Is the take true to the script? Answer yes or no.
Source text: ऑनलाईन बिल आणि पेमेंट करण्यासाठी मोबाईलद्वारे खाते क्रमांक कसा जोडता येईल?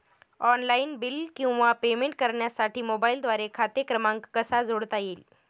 no